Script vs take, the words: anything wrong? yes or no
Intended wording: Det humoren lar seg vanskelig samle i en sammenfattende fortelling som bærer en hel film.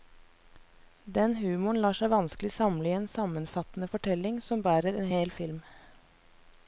yes